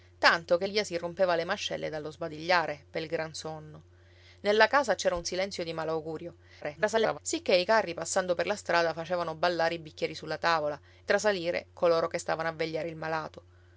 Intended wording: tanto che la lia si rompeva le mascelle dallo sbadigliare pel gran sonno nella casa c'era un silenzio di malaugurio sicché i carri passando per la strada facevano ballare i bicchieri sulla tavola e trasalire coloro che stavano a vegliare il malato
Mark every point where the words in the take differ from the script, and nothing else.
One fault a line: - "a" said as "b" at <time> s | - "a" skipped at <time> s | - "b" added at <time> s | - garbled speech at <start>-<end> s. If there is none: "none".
- "la" skipped at 0.7 s
- garbled speech at 6.6-7.2 s
- "e" skipped at 10.8 s